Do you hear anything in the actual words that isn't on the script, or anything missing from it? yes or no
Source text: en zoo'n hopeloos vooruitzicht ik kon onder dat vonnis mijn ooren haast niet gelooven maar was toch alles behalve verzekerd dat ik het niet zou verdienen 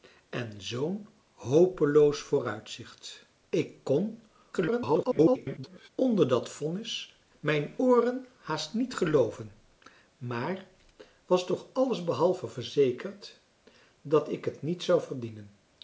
yes